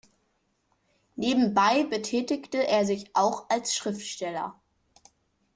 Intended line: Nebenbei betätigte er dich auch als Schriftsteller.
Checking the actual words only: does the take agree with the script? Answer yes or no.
no